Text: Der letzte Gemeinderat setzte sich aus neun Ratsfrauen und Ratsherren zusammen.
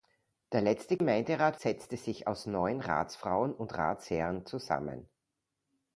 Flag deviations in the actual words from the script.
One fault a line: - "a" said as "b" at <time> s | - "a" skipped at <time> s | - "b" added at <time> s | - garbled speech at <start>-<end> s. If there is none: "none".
none